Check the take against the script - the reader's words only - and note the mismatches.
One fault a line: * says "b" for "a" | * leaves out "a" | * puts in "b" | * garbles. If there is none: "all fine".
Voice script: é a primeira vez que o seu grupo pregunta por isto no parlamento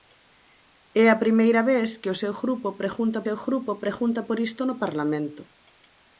* puts in "seu grupo pregunta"